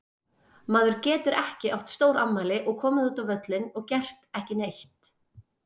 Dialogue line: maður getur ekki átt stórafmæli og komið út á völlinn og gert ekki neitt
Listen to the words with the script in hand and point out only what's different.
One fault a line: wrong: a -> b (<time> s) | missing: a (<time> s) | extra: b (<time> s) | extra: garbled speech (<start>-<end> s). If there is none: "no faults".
no faults